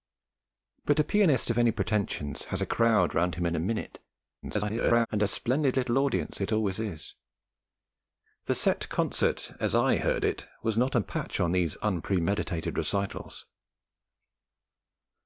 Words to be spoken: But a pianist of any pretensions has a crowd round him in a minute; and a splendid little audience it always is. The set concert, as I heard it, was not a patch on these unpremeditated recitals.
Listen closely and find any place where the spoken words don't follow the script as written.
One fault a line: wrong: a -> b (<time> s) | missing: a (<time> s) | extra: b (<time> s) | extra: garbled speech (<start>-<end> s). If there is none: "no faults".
extra: garbled speech (4.4-5.1 s)